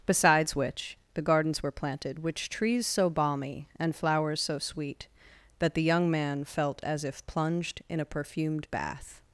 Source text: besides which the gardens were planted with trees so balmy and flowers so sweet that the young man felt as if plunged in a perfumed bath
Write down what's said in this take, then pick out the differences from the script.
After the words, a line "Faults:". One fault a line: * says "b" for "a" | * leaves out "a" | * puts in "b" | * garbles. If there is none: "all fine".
besides which the gardens were planted which trees so balmy and flowers so sweet that the young man felt as if plunged in a perfumed bath
Faults:
* says "which" for "with"